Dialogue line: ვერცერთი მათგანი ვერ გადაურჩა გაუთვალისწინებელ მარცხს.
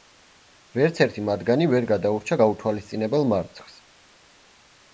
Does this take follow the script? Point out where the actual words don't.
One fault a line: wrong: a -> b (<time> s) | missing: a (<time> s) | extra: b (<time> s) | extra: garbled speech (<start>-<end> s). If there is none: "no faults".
no faults